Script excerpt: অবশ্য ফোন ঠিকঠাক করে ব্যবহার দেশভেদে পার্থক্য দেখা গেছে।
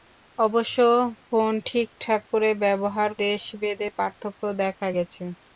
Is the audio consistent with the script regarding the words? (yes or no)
yes